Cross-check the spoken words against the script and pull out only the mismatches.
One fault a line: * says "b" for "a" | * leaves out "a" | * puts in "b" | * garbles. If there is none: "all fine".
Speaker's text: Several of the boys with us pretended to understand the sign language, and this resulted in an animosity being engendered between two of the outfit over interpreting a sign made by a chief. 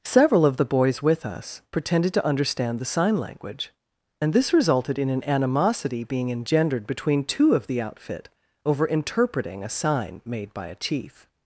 all fine